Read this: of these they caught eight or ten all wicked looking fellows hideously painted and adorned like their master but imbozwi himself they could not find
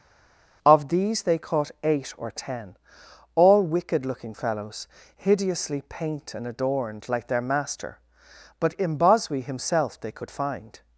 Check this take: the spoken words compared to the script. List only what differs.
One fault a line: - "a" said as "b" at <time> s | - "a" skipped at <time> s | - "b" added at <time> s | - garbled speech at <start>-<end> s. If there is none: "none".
- "painted" said as "paint" at 5.9 s
- "not" skipped at 10.3 s